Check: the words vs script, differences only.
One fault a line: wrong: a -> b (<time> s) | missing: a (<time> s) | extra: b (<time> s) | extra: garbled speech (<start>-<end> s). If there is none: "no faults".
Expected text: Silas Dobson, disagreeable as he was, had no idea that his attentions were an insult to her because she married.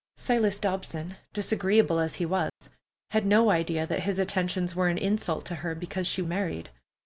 no faults